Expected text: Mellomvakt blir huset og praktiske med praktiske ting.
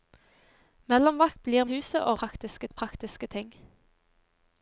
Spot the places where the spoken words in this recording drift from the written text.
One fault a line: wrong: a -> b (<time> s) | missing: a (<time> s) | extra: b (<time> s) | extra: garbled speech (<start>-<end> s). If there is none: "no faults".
no faults